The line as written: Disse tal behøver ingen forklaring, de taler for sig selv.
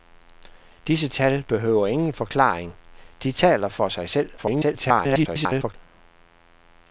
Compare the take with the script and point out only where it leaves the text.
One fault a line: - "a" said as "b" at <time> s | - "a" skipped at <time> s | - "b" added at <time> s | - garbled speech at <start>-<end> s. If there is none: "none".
- garbled speech at 4.4-5.8 s